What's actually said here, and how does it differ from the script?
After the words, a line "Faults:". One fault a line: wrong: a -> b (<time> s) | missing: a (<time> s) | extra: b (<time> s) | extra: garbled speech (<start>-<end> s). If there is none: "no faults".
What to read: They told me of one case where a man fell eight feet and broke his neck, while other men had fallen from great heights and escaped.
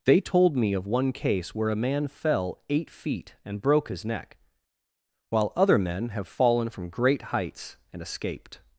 They told me of one case where a man fell eight feet and broke his neck, while other men have fallen from great heights and escaped.
Faults:
wrong: had -> have (6.1 s)